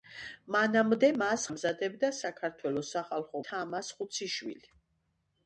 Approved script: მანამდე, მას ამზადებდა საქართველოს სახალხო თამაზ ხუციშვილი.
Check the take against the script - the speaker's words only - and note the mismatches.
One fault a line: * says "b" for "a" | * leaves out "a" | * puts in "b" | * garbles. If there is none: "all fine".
all fine